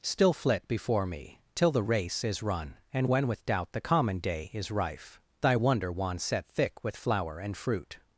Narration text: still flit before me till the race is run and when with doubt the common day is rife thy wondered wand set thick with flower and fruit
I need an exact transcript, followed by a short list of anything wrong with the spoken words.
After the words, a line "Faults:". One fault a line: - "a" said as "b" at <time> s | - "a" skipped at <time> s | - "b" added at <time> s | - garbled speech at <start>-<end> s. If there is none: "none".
still flit before me till the race is run and when with doubt the common day is rife thy wonder wand set thick with flower and fruit
Faults:
- "wondered" said as "wonder" at 5.5 s